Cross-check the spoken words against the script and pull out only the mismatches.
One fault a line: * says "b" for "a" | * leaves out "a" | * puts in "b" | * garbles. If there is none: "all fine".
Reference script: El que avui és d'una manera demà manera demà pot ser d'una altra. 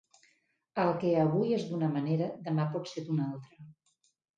* leaves out "manera demà"